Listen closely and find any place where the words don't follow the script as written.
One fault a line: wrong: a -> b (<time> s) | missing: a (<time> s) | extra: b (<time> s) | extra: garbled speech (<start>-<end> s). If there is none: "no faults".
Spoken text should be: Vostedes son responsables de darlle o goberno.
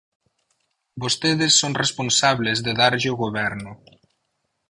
no faults